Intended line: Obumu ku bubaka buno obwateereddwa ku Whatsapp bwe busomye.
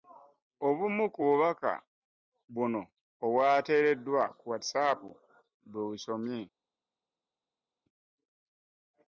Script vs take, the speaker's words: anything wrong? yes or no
no